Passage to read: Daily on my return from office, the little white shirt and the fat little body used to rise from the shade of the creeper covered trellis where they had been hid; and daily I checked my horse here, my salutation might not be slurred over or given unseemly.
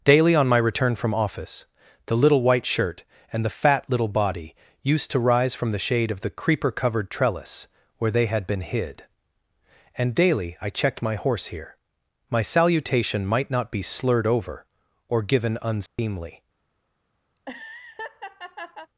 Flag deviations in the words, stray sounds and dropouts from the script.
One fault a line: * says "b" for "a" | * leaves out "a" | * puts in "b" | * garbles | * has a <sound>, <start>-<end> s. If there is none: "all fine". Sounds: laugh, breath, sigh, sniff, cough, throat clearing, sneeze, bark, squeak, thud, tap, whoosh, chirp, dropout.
* has a dropout, 15.9-16.0 s
* has a laugh, 17.3-18.9 s